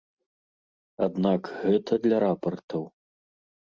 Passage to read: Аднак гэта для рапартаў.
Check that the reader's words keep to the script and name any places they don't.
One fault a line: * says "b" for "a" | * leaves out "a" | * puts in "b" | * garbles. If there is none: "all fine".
all fine